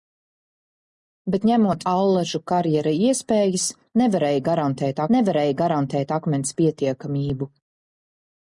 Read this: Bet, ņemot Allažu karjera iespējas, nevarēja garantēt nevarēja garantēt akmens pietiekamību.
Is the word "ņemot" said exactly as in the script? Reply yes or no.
yes